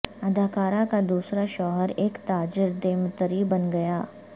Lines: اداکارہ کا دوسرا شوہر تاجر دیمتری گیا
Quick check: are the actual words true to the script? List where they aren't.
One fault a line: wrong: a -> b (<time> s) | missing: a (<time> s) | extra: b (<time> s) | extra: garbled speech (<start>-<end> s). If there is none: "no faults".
extra: ایک (1.9 s)
extra: بن (3.5 s)